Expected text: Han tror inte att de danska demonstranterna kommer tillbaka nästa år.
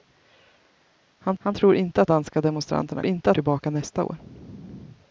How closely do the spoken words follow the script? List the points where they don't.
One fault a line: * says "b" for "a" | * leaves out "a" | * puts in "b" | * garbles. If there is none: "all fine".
* puts in "han"
* leaves out "de"
* says "inte" for "kommer"